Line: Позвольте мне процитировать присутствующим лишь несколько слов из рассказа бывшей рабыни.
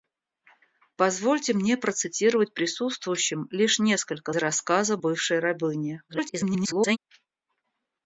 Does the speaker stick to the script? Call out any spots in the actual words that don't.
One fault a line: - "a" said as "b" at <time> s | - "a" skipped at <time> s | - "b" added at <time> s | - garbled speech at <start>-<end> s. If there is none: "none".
- "слов из" skipped at 4.3 s
- garbled speech at 6.1-7.0 s